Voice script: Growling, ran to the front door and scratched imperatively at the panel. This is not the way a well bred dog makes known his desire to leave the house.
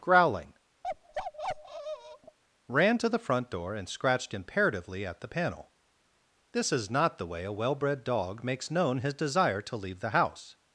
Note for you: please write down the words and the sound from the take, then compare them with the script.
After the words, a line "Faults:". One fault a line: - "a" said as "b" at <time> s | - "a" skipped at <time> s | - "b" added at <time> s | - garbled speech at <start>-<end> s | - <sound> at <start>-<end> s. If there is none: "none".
Growling, ran to the front door and scratched imperatively at the panel. This is not the way a well bred dog makes known his desire to leave the house.
Faults:
- bark at 0.8-2.4 s